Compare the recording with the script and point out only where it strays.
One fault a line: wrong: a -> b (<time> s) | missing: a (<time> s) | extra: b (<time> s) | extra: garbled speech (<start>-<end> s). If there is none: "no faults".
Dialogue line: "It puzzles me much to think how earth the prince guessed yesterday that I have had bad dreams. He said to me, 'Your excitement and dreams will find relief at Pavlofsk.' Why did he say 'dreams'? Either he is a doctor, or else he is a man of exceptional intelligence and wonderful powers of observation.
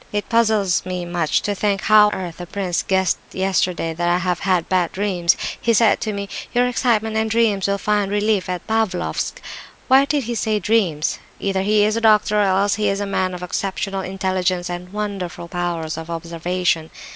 no faults